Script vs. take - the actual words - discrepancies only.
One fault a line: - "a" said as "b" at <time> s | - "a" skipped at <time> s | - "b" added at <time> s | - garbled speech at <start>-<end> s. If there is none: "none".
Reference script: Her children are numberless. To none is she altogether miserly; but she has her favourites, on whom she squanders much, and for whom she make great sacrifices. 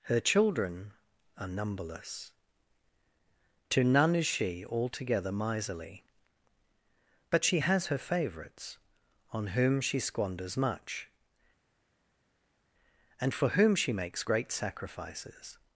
- "make" said as "makes" at 13.9 s